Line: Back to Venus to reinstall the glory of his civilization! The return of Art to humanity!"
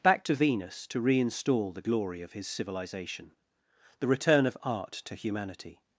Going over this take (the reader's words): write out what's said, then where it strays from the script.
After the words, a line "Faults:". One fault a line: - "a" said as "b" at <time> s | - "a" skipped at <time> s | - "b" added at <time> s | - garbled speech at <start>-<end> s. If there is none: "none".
Back to Venus to reinstall the glory of his civilization! The return of Art to humanity!"
Faults:
none